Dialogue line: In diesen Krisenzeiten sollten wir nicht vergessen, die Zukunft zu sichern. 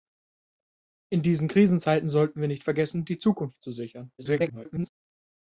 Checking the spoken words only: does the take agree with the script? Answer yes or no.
no